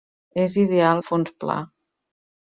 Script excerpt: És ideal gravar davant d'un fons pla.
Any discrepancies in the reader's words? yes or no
yes